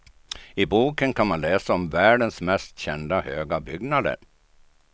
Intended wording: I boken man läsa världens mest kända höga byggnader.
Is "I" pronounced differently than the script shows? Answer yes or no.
no